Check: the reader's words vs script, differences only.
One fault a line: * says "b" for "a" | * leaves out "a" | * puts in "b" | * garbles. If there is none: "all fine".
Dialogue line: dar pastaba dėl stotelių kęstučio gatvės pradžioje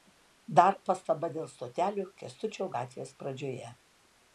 all fine